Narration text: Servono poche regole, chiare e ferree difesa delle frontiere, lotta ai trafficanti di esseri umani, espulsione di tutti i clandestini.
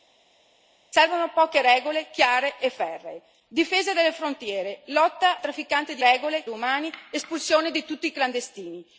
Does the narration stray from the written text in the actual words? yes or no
yes